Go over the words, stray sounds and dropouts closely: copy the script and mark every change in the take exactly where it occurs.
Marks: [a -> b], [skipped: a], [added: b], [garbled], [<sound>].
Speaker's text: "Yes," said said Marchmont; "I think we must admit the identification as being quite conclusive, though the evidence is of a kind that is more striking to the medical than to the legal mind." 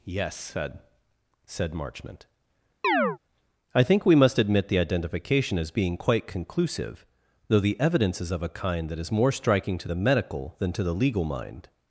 "Yes," said said Marchmont; [chirp] "I think we must admit the identification as being quite conclusive, though the evidence is of a kind that is more striking to the medical than to the legal mind."